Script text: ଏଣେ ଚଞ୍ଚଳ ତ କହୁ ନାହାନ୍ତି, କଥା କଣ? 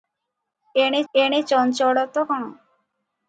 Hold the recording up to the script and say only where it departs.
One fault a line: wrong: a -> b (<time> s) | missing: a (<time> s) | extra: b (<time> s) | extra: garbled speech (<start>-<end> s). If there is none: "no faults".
extra: ଏଣେ (1.1 s)
missing: କହୁ ନାହାନ୍ତି କଥା (2.3 s)